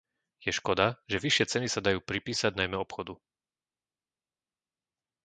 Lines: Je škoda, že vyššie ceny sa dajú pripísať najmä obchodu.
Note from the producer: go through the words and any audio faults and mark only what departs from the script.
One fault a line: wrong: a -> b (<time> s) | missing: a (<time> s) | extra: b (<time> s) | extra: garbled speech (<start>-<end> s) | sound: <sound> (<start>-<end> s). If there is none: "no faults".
no faults